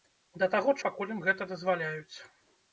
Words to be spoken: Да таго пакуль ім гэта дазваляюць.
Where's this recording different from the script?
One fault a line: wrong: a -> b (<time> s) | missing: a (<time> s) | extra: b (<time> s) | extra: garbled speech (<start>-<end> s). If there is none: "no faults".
no faults